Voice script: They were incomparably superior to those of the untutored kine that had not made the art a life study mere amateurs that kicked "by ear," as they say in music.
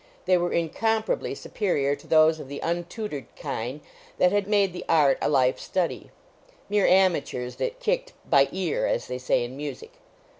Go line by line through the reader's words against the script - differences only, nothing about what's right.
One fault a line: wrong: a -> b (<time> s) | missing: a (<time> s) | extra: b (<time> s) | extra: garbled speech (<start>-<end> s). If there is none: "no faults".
missing: not (4.5 s)